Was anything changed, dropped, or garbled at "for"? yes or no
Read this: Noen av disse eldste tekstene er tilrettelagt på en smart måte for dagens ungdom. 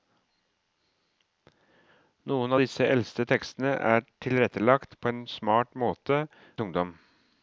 yes